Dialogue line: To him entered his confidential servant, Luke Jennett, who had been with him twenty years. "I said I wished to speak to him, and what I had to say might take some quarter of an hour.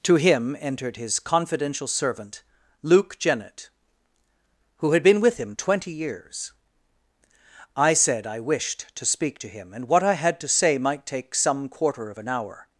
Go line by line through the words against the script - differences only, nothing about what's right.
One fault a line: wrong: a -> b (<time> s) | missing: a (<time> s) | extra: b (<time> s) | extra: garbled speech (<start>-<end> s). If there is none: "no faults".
no faults